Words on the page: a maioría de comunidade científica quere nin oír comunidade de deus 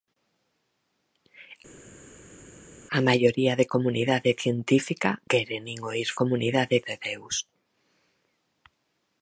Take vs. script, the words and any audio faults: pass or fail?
pass